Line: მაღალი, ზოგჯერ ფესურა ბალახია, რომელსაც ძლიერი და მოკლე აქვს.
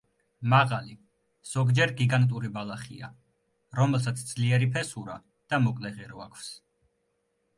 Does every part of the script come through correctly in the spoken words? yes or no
no